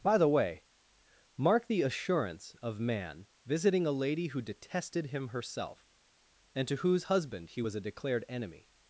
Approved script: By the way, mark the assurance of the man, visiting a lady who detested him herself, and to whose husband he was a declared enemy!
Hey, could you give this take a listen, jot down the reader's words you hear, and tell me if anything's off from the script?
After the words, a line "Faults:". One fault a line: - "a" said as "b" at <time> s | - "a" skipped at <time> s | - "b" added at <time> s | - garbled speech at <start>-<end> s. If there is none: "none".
By the way, mark the assurance of man, visiting a lady who detested him herself, and to whose husband he was a declared enemy!
Faults:
- "the" skipped at 2.8 s